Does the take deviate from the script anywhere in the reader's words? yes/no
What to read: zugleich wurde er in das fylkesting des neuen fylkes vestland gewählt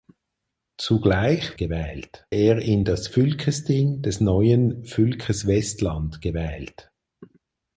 yes